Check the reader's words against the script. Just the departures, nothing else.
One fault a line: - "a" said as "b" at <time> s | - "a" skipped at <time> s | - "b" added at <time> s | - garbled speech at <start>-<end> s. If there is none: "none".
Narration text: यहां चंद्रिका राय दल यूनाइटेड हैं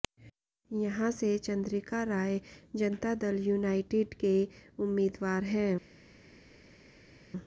- "से" added at 1.1 s
- "जनता" added at 2.8 s
- "के उम्मीदवार" added at 4.2 s